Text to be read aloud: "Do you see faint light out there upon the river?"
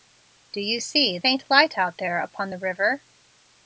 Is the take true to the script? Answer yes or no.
yes